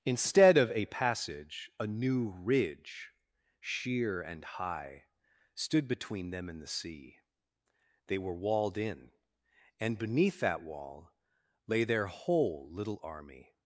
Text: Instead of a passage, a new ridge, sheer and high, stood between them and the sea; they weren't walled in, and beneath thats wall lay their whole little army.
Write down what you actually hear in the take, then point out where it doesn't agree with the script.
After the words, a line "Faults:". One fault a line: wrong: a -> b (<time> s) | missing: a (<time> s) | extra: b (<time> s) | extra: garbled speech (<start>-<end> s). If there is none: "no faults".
Instead of a passage, a new ridge, sheer and high, stood between them and the sea; they were walled in, and beneath that wall lay their whole little army.
Faults:
wrong: weren't -> were (8.2 s)
wrong: thats -> that (10.4 s)